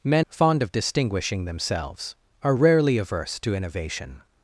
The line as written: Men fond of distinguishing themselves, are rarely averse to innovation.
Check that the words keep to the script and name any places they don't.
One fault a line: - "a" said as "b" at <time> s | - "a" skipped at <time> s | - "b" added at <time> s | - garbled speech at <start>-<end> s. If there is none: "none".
none